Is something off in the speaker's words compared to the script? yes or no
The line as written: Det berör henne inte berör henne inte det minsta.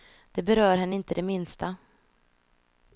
yes